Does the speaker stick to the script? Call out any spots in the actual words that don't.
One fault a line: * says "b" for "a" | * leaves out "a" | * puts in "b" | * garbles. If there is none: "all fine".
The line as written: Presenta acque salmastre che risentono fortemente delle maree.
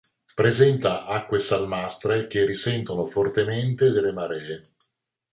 all fine